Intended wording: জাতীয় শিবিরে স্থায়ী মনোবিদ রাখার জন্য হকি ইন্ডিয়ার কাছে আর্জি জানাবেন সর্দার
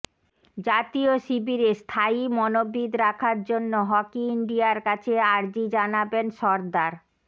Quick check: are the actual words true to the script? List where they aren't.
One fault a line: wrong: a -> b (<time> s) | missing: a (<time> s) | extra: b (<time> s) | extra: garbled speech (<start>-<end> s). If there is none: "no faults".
no faults